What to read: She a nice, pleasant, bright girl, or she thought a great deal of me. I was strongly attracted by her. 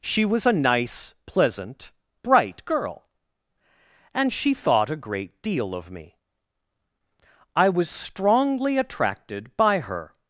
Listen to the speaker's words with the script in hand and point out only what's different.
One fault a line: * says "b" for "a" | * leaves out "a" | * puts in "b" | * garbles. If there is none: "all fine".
* puts in "was"
* says "and" for "or"